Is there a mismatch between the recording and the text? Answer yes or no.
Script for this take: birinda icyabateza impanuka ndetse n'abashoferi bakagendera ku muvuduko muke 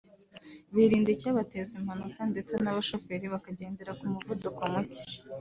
no